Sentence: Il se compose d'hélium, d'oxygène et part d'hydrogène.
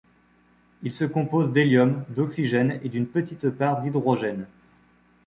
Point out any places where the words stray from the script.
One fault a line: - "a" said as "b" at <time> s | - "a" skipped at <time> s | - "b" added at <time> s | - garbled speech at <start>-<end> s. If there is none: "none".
- "d'une petite" added at 2.9 s